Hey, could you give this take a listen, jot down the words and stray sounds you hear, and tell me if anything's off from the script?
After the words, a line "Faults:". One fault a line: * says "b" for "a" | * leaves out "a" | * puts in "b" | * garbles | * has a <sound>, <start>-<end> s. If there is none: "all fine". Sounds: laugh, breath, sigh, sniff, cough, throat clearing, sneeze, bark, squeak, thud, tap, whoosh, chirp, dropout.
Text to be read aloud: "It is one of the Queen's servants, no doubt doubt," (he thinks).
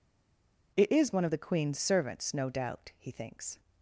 "It is one of the Queen's servants, no doubt," (he thinks).
Faults:
* leaves out "doubt"